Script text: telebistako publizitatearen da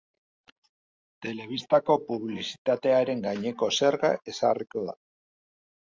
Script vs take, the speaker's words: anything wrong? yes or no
yes